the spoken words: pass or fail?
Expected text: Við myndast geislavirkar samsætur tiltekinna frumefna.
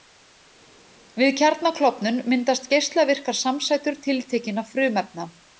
fail